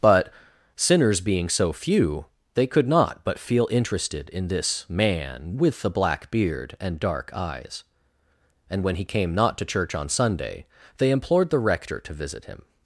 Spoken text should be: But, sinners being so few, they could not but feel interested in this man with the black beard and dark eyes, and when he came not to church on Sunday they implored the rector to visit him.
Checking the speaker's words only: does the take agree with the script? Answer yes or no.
yes